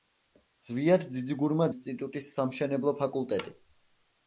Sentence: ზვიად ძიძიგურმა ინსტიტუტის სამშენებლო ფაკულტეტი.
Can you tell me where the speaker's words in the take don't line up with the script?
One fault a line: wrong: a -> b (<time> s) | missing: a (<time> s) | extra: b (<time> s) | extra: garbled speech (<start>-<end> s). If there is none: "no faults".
no faults